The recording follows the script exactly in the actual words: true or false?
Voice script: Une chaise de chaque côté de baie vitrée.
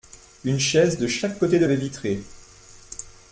true